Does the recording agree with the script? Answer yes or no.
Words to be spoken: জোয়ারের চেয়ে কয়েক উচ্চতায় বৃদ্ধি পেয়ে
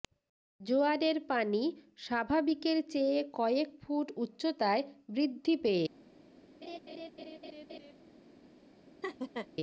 no